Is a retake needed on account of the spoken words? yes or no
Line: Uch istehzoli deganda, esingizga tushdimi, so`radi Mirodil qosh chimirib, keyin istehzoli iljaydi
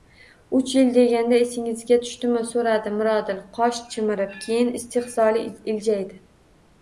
yes